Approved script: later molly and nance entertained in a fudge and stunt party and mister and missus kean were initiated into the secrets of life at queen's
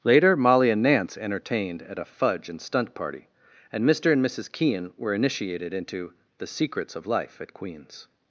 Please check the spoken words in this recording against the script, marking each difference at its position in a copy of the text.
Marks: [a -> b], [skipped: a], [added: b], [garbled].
later molly and nance entertained [in -> at] a fudge and stunt party and mister and missus kean were initiated into the secrets of life at queen's